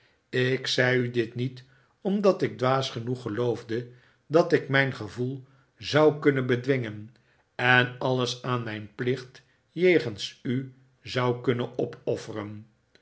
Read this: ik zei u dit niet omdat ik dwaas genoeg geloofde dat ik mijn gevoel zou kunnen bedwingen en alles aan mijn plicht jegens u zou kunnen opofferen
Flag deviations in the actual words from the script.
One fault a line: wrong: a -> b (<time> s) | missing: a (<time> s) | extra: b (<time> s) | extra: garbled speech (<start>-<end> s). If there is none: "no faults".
no faults